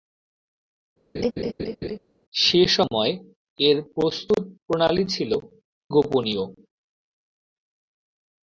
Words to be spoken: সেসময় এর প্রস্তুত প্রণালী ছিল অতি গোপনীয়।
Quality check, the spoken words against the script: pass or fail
fail